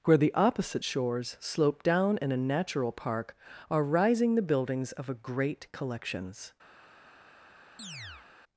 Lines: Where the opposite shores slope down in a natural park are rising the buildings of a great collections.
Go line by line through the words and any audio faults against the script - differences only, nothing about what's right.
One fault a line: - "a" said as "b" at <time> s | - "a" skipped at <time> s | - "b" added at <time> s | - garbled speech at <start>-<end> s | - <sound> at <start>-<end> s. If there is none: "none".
- chirp at 7.8-8.3 s